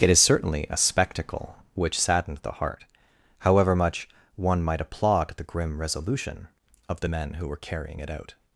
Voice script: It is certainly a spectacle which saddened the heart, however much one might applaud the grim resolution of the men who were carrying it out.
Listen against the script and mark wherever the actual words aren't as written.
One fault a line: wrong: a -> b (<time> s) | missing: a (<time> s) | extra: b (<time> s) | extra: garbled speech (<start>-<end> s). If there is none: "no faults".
no faults